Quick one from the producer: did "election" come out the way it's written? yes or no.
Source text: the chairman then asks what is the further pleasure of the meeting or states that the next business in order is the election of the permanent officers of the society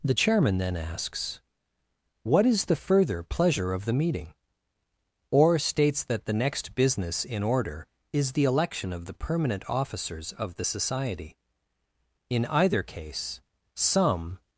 yes